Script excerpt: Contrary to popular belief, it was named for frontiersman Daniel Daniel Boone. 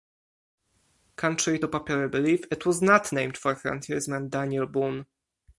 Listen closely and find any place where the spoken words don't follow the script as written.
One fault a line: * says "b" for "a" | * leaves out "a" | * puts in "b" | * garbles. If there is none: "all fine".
* puts in "not"
* leaves out "Daniel"